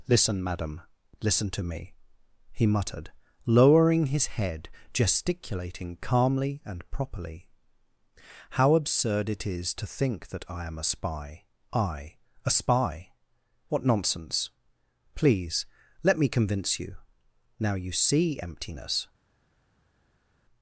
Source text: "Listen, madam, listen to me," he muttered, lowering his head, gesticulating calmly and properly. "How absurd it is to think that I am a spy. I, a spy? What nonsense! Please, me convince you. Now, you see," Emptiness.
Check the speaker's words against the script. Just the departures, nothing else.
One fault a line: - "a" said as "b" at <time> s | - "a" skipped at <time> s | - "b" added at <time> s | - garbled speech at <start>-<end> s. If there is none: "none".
- "let" added at 16.0 s